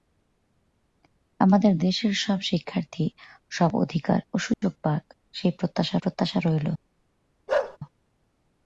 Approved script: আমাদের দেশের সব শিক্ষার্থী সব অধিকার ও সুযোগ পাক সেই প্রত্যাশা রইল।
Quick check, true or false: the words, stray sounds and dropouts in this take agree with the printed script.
false